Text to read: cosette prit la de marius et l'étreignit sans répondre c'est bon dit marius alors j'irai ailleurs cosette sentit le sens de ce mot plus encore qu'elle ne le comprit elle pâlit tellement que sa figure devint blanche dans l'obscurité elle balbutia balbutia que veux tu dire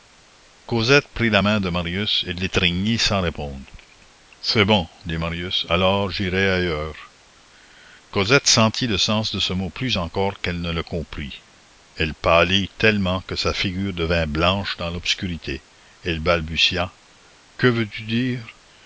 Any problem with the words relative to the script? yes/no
yes